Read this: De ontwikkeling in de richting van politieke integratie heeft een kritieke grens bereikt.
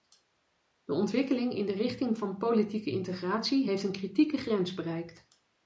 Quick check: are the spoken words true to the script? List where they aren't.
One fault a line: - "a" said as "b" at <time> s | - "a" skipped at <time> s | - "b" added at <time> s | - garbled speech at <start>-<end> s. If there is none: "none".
none